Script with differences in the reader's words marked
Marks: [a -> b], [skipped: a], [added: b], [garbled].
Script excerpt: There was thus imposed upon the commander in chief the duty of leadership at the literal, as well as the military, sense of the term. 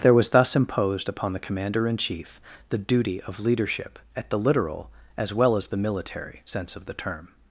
There was thus imposed upon the commander in chief the duty of leadership at the literal, as well as the military, sense of the term.